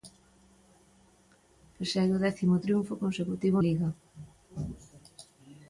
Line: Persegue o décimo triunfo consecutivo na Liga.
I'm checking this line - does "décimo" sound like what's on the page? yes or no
yes